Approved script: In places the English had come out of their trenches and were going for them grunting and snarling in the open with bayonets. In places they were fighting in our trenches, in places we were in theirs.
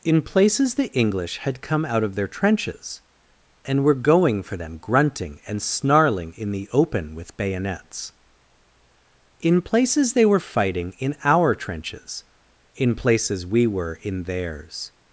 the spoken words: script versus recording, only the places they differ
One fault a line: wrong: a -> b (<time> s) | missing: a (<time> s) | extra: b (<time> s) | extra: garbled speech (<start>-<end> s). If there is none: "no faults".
no faults